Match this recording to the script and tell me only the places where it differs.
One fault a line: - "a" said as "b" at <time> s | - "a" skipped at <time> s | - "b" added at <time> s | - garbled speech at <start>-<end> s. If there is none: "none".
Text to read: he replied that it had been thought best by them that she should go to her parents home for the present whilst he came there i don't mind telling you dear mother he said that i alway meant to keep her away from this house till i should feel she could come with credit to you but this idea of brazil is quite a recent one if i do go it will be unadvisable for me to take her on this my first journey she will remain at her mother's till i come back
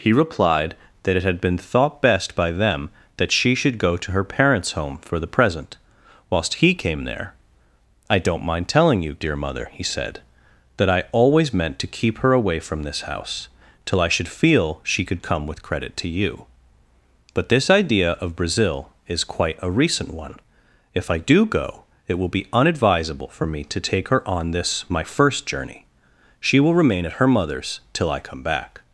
- "alway" said as "always" at 11.1 s